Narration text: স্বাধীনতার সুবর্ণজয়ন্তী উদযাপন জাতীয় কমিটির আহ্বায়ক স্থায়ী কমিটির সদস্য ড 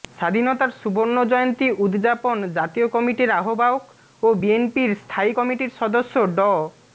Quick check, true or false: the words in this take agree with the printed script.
false